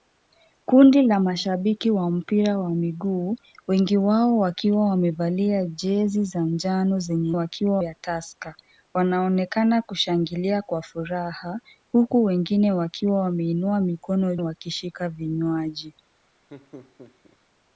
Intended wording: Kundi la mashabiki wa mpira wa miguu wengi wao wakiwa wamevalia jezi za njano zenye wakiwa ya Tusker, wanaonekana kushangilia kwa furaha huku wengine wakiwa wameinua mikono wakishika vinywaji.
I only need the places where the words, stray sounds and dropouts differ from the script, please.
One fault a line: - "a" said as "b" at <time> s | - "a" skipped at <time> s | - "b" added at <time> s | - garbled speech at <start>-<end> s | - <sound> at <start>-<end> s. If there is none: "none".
- laugh at 16.5-17.4 s